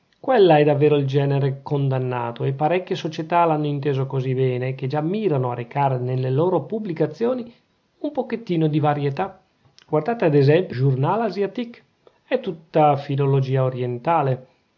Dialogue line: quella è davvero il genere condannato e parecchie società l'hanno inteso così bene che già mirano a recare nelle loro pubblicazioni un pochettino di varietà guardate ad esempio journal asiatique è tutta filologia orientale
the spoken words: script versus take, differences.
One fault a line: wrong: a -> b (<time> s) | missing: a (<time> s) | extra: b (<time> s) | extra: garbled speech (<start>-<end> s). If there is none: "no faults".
no faults